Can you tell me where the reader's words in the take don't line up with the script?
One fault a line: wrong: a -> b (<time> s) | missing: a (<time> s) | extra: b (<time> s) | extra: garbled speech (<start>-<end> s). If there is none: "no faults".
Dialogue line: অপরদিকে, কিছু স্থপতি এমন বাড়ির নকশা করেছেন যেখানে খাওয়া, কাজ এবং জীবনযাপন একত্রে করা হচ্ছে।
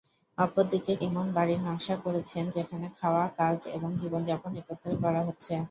missing: কিছু স্থপতি (0.9 s)